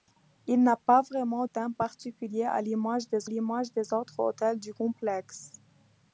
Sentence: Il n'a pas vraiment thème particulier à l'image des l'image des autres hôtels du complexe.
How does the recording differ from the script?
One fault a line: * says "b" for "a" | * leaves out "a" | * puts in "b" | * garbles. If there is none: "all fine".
all fine